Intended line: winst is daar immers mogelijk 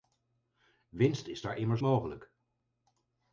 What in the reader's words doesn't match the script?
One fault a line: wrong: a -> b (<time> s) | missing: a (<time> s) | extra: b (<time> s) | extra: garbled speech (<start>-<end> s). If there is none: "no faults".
no faults